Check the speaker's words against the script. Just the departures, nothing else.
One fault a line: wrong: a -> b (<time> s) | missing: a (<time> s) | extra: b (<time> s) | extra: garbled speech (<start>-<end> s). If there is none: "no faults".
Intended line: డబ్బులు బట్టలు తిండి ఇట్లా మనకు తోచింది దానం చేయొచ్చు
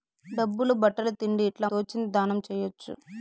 missing: మనకు (1.7 s)